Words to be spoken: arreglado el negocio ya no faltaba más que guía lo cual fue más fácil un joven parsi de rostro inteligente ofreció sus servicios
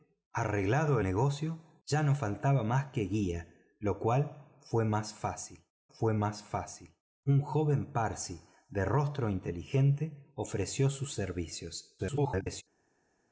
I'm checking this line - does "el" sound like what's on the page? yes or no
no